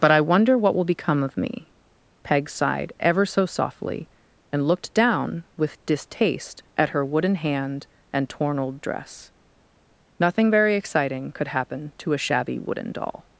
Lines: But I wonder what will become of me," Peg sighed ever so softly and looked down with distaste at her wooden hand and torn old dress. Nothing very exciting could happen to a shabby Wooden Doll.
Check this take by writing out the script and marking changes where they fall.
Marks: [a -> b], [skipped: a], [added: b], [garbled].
But I wonder what will become of me," Peg sighed ever so softly and looked down with distaste at her wooden hand and torn old dress. Nothing very exciting could happen to a shabby Wooden Doll.